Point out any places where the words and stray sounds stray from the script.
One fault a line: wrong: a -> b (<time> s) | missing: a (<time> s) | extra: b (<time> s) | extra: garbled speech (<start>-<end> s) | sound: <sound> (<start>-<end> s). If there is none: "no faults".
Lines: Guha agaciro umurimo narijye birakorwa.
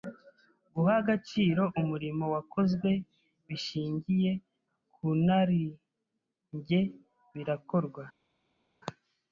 extra: wakozwe bishingiye ku (2.3 s)